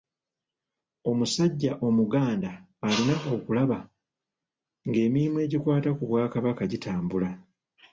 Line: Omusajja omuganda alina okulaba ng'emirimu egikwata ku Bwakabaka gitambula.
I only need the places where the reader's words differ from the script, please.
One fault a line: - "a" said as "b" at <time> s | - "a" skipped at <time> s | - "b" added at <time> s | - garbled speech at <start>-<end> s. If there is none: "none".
none